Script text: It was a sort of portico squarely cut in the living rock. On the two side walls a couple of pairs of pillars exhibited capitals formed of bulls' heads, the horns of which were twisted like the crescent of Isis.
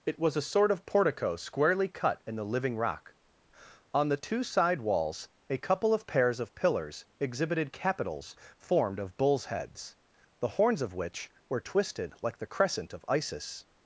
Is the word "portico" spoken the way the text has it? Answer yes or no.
yes